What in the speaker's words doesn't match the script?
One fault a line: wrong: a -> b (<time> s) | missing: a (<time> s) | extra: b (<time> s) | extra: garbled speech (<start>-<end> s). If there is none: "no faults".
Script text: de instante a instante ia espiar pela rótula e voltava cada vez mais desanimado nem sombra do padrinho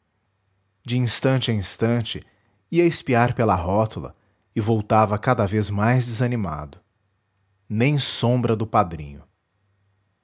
no faults